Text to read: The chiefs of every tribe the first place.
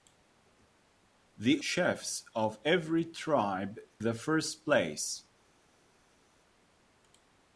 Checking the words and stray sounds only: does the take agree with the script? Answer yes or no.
yes